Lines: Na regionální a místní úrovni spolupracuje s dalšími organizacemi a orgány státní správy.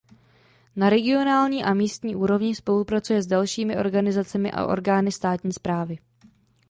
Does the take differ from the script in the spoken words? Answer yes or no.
no